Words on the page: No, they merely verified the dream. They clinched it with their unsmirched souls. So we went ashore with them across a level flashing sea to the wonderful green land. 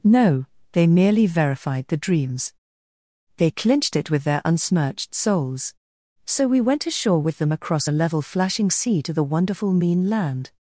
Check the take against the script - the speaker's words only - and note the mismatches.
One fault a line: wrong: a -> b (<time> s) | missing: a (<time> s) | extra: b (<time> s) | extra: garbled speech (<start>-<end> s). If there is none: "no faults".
wrong: dream -> dreams (2.0 s)
wrong: green -> mean (9.7 s)